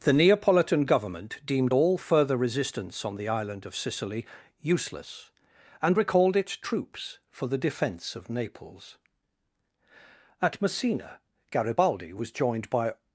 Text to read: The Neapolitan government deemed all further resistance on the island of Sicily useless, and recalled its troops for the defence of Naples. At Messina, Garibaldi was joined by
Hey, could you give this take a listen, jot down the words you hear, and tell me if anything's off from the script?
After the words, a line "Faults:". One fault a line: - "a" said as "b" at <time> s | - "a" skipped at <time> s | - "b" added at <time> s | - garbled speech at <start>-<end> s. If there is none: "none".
The Neapolitan government deemed all further resistance on the island of Sicily useless, and recalled its troops for the defence of Naples. At Messina, Garibaldi was joined by
Faults:
none